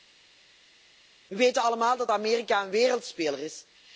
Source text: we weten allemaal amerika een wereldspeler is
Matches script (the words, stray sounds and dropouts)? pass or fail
fail